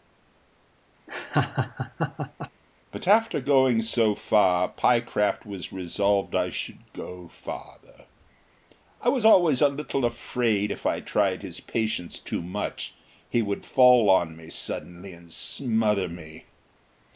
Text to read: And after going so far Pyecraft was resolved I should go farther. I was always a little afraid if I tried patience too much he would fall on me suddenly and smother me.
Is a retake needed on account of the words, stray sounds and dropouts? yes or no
yes